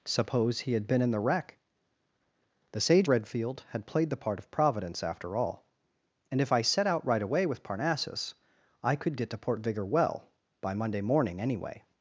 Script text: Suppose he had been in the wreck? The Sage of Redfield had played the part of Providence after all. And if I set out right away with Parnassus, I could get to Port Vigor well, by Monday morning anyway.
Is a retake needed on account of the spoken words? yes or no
yes